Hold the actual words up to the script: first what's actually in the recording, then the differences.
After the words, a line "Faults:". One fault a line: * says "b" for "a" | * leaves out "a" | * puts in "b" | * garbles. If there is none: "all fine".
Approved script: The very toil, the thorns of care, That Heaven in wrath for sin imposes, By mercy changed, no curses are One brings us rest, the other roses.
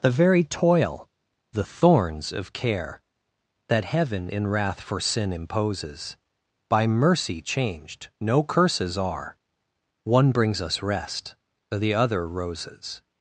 The very toil, the thorns of care, That Heaven in wrath for sin imposes, By mercy changed, no curses are One brings us rest, the other roses.
Faults:
all fine